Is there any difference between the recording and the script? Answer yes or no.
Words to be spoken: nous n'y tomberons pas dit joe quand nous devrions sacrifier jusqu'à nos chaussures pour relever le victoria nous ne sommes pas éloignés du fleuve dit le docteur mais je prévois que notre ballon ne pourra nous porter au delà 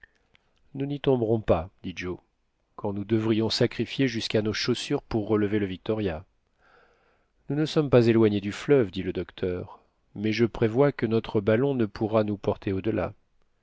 no